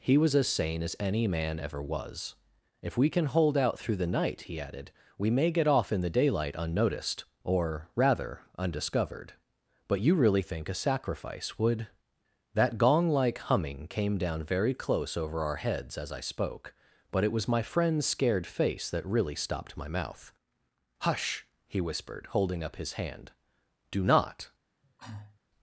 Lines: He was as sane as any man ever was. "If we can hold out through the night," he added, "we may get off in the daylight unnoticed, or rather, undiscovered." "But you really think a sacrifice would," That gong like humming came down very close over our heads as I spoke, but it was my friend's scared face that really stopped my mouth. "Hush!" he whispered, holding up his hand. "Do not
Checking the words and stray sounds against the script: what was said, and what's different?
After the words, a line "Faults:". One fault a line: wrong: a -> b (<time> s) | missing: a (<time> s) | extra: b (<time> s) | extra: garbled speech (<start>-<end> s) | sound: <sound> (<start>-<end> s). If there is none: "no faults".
He was as sane as any man ever was. "If we can hold out through the night," he added, "we may get off in the daylight unnoticed, or rather, undiscovered." "But you really think a sacrifice would," That gong like humming came down very close over our heads as I spoke, but it was my friend's scared face that really stopped my mouth. "Hush!" he whispered, holding up his hand. "Do not
Faults:
sound: cough (24.8-25.4 s)